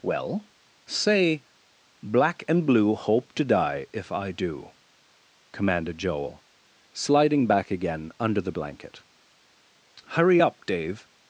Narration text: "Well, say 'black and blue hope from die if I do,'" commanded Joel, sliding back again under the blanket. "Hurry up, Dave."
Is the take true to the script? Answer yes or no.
no